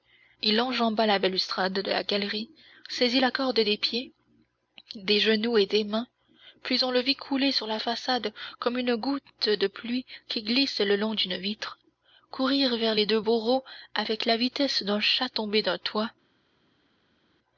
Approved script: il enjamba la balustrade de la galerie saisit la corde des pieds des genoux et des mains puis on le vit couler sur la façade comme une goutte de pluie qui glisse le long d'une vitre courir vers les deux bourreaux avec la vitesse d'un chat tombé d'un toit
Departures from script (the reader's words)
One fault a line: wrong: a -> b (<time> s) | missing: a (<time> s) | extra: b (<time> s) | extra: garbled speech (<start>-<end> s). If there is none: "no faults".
no faults